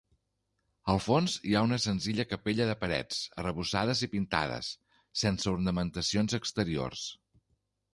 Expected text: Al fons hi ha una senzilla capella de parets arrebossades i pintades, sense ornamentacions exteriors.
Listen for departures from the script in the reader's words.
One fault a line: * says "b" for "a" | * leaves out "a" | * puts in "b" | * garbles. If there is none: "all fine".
all fine